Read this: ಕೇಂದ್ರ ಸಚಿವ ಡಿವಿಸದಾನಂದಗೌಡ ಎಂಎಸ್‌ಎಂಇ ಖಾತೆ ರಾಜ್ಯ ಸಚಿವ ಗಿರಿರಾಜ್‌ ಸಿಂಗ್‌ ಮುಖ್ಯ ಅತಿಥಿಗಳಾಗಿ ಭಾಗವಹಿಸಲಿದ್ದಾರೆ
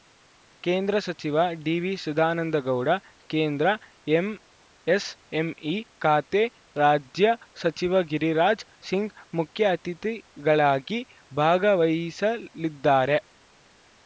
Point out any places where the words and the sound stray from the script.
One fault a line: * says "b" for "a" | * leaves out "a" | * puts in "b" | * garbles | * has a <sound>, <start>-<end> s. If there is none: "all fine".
* puts in "ಕೇಂದ್ರ"